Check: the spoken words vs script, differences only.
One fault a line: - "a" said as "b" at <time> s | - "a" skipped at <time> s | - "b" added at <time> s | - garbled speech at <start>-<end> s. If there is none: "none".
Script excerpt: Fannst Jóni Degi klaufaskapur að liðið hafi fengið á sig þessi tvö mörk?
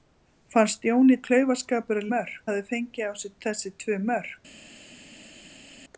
- "Degi" skipped at 1.2 s
- "liðið" said as "mörk" at 2.1 s